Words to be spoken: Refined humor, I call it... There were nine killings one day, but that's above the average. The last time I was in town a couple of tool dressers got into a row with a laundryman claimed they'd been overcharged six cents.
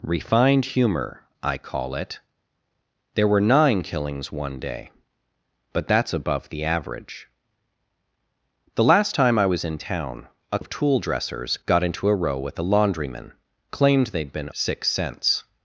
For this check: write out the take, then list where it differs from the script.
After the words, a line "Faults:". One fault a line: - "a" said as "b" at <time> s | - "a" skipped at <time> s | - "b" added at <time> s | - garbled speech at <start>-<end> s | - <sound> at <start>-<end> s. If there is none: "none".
Refined humor, I call it... There were nine killings one day, but that's above the average. The last time I was in town a of tool dressers got into a row with a laundryman claimed they'd been six cents.
Faults:
- "couple" skipped at 10.6 s
- "overcharged" skipped at 14.5 s